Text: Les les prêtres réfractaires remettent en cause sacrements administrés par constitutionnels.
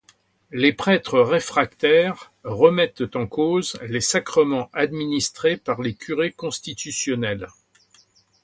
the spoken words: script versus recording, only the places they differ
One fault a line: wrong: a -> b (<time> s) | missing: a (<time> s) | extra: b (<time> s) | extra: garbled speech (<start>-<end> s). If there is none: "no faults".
missing: les (0.7 s)
extra: les (3.8 s)
extra: les curés (5.8 s)